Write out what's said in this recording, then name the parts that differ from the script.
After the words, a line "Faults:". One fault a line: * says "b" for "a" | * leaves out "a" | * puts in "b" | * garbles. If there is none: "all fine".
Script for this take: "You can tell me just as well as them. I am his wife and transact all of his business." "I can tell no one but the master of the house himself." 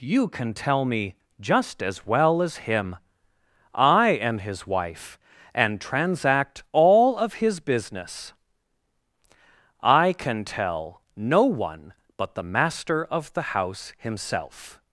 "You can tell me just as well as him. I am his wife and transact all of his business." "I can tell no one but the master of the house himself."
Faults:
* says "him" for "them"